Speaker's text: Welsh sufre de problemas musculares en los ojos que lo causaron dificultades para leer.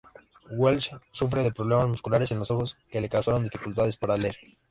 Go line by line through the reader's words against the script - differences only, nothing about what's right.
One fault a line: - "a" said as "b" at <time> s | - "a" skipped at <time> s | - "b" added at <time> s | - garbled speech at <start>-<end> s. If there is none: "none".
- "lo" said as "le" at 3.0 s